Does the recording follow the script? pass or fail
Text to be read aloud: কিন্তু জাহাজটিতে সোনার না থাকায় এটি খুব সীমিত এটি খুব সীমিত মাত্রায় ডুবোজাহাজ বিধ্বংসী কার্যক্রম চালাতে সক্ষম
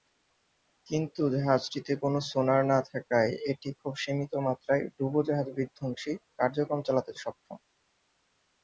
fail